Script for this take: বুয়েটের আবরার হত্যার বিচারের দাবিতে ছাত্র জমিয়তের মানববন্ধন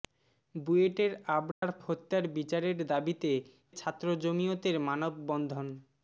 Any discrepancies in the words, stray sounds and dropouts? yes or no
yes